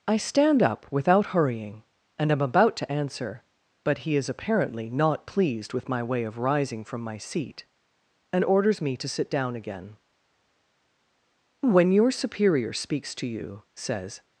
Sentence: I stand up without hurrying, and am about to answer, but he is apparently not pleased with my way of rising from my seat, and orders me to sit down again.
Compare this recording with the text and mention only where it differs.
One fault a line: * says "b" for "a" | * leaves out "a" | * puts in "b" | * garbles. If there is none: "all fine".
* puts in "When your superior speaks to you says"